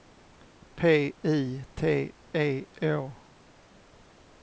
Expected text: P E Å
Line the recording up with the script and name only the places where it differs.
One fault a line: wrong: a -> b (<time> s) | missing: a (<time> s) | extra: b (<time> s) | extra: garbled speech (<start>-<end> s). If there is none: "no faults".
extra: I T (1.2 s)